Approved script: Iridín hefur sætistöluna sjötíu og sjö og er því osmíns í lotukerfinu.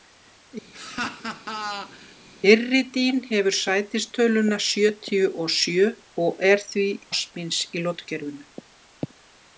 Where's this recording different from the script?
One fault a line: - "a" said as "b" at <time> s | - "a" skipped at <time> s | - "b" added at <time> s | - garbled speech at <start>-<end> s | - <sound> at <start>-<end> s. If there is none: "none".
- laugh at 0.7-2.1 s